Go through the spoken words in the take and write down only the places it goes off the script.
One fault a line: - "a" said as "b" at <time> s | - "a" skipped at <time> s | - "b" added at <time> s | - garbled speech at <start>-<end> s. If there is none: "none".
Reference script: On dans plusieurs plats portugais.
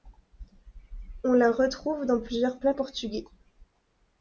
- "la retrouve" added at 1.3 s